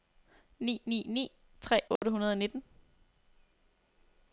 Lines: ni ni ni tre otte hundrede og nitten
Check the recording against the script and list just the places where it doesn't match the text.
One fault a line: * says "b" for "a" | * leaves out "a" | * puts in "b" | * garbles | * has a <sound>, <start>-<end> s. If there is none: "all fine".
* has a dropout, 2.0-2.0 s